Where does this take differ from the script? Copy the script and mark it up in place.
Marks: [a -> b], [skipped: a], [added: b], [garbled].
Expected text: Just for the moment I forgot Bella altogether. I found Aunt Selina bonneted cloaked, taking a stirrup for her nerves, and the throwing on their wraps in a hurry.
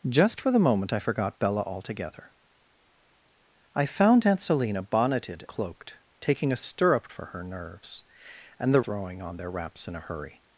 Just for the moment I forgot Bella altogether. I found Aunt Selina bonneted cloaked, taking a stirrup for her nerves, and the throwing on their wraps in a hurry.